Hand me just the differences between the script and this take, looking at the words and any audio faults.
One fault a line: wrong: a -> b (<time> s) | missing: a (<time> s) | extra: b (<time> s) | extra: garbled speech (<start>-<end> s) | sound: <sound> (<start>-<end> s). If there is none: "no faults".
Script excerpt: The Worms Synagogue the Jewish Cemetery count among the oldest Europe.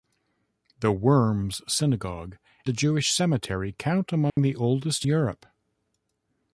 sound: dropout (4.3-4.4 s)